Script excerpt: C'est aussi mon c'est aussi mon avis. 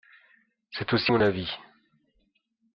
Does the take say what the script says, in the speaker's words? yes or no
no